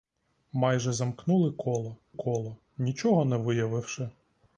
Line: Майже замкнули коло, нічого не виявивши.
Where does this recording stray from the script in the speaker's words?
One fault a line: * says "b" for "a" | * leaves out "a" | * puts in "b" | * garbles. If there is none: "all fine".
* puts in "коло"